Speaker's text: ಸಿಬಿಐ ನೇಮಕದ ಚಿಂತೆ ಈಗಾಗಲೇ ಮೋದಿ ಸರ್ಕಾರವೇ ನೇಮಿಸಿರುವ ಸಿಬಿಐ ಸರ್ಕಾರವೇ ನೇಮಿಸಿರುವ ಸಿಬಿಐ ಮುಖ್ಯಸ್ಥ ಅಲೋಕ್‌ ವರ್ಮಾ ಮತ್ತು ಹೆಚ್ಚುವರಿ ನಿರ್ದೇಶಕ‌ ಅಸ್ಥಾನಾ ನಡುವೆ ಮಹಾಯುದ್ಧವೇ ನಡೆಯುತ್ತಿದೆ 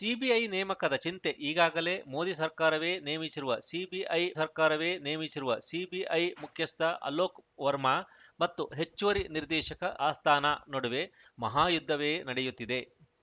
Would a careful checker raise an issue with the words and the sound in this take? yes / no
no